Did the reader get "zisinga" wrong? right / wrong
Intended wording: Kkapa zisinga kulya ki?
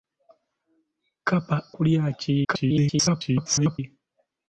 wrong